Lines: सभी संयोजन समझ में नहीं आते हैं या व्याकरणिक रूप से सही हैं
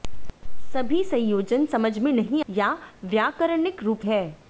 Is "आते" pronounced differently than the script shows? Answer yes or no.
yes